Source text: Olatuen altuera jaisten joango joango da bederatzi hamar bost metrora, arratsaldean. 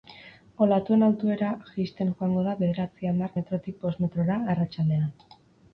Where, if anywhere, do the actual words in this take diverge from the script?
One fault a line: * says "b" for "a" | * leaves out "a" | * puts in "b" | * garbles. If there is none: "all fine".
* leaves out "joango"
* puts in "metrotik"